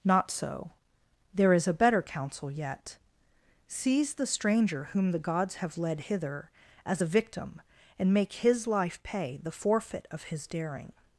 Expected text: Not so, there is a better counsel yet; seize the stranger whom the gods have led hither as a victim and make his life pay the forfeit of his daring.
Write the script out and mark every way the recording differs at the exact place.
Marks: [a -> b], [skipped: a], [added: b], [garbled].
Not so, there is a better counsel yet; seize the stranger whom the gods have led hither as a victim and make his life pay the forfeit of his daring.